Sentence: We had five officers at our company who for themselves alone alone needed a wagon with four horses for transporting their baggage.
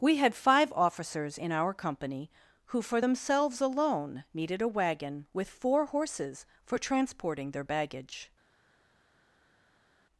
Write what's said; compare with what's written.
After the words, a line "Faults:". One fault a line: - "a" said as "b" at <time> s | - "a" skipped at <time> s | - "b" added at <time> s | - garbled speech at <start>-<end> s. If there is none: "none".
We had five officers in our company who for themselves alone needed a wagon with four horses for transporting their baggage.
Faults:
- "at" said as "in" at 1.4 s
- "alone" skipped at 4.2 s